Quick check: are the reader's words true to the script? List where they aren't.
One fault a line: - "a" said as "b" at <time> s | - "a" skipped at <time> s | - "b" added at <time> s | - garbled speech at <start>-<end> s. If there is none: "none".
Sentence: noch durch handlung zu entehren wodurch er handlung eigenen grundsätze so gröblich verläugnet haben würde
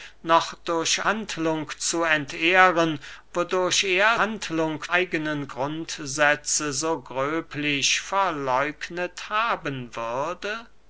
none